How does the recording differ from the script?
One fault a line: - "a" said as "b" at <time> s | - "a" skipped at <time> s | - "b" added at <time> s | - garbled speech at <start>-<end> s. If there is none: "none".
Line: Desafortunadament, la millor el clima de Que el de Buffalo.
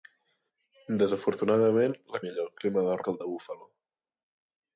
none